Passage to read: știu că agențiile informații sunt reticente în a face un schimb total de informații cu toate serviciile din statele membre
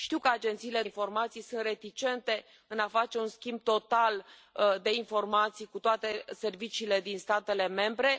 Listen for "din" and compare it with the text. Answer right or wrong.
right